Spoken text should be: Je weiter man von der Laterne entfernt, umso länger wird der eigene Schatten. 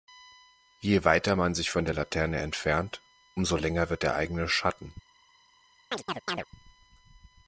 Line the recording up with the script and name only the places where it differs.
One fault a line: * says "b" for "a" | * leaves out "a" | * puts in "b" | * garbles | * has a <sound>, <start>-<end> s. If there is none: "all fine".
* puts in "sich"
* has a chirp, 5.9-6.5 s